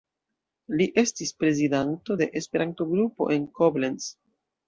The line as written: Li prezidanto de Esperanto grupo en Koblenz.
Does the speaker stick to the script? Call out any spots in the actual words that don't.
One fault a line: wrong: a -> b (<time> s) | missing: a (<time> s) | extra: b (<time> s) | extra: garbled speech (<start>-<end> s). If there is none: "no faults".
extra: estis (1.0 s)